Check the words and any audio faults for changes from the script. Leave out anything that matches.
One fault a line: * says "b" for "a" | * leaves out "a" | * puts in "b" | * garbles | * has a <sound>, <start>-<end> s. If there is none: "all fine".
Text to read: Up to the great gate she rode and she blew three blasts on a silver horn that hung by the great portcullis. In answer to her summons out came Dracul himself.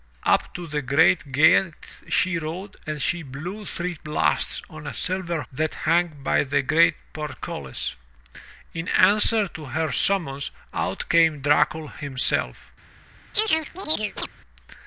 * leaves out "horn"
* has a chirp, 13.3-14.3 s